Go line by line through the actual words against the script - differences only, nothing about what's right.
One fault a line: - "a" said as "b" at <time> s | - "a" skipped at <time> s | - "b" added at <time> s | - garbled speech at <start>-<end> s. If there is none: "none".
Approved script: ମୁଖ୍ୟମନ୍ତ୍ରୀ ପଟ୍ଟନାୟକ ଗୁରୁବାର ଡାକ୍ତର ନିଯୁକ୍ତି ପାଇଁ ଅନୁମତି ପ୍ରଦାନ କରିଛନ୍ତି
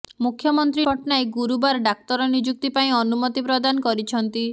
none